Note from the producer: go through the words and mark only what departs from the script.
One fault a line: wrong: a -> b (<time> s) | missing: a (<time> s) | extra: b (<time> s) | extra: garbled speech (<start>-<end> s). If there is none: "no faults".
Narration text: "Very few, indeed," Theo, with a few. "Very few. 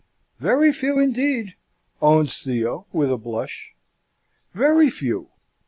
extra: owns (2.0 s)
wrong: few -> blush (3.2 s)